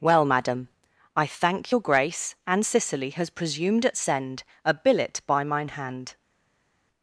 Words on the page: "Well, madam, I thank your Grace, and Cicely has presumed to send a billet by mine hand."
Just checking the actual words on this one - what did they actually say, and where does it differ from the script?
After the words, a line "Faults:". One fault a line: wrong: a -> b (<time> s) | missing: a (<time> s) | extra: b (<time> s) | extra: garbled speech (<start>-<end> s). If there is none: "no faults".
"Well, madam, I thank your Grace, and Cicely has presumed at send a billet by mine hand."
Faults:
wrong: to -> at (3.9 s)